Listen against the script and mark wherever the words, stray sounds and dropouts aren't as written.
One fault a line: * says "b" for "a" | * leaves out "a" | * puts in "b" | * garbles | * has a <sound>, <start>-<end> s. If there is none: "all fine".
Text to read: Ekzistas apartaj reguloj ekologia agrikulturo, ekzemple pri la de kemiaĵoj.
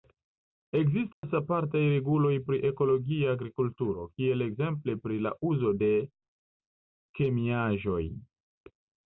* has a dropout, 1.1-1.2 s
* puts in "pri"
* puts in "kiel"
* puts in "uzo"